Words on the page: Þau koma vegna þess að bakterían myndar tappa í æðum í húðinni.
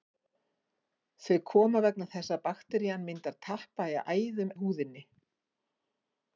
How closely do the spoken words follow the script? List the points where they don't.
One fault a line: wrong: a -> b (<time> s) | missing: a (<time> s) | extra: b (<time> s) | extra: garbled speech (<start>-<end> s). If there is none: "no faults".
no faults